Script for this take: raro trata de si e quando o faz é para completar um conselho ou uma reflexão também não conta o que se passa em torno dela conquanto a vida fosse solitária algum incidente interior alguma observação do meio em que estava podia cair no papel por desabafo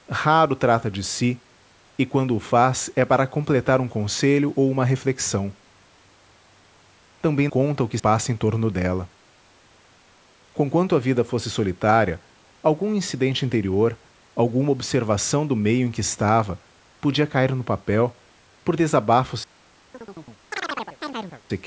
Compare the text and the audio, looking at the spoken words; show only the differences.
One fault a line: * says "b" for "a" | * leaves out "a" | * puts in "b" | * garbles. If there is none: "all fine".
* leaves out "não"
* leaves out "se"